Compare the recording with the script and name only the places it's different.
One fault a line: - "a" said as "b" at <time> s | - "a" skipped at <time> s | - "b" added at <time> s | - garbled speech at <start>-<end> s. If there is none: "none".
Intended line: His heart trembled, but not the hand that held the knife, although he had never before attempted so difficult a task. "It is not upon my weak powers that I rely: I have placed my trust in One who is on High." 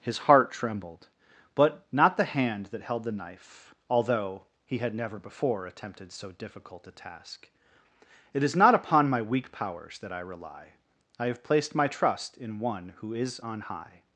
none